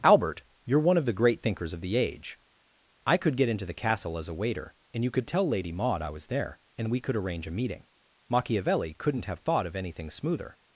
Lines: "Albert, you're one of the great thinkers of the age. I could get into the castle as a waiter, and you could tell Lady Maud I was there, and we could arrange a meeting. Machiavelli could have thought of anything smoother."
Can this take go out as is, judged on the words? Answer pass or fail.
fail